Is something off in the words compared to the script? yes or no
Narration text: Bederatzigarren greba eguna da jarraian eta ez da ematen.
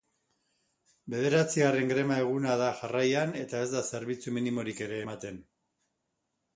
yes